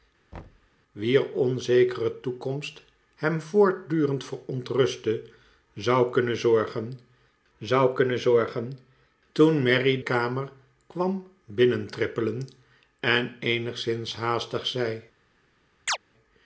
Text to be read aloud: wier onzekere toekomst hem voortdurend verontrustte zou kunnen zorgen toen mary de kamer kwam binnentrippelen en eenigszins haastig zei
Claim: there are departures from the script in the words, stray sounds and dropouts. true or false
true